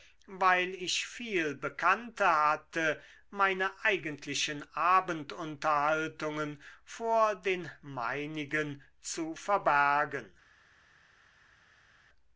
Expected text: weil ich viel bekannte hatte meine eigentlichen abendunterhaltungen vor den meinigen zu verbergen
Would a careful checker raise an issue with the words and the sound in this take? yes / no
no